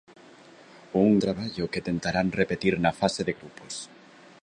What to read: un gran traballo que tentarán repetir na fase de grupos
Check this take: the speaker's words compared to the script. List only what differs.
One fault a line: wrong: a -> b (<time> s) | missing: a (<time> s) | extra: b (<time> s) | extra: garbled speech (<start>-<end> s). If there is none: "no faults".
missing: gran (1.1 s)